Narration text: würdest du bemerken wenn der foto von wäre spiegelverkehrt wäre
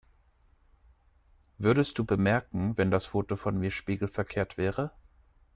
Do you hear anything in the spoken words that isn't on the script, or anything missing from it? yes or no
yes